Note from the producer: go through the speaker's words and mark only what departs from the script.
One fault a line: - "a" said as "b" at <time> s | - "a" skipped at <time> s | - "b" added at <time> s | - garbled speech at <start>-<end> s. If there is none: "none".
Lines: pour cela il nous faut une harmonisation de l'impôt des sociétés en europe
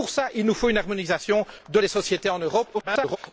- "l'impôt" skipped at 1.8 s
- garbled speech at 2.7-3.2 s